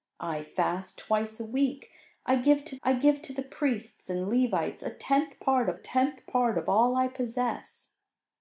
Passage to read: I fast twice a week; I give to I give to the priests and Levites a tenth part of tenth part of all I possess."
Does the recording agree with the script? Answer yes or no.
yes